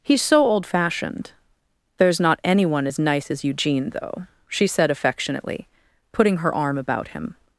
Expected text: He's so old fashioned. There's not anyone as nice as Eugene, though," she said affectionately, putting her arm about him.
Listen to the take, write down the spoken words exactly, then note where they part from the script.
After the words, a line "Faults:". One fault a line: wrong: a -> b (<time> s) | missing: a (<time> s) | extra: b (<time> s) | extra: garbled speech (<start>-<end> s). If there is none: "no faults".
He's so old fashioned. There's not anyone as nice as Eugene, though," she said affectionately, putting her arm about him.
Faults:
no faults